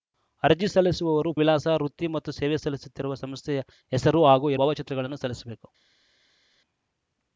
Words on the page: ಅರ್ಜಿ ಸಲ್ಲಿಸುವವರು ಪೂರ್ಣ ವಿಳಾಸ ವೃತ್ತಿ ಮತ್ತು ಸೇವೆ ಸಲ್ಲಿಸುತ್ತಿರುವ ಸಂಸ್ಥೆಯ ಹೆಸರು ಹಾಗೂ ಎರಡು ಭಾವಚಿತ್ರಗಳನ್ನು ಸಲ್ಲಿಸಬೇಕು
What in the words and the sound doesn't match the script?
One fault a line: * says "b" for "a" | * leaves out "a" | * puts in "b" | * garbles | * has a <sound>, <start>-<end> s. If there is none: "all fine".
* leaves out "ಪೂರ್ಣ"
* leaves out "ಎರಡು"